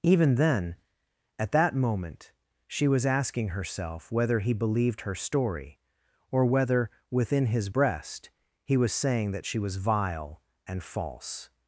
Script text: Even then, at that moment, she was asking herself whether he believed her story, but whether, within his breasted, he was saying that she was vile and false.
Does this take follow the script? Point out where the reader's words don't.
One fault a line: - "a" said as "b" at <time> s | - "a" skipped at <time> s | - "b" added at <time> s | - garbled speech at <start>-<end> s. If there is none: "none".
- "but" said as "or" at 6.3 s
- "breasted" said as "breast" at 7.7 s